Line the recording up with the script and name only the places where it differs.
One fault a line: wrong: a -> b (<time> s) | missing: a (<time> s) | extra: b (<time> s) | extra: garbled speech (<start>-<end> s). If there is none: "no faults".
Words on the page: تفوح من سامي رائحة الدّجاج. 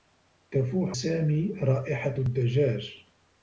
missing: من (1.0 s)